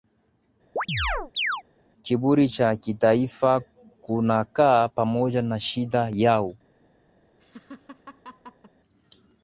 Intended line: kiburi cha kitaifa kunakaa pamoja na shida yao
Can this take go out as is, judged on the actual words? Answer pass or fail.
pass